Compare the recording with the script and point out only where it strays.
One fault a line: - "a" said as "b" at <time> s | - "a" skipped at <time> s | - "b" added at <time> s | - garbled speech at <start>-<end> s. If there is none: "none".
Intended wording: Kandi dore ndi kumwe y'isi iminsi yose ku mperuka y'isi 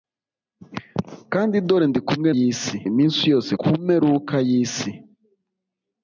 none